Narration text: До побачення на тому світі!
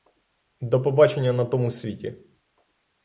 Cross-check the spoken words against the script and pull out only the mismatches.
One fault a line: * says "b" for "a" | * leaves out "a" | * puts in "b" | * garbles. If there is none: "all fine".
all fine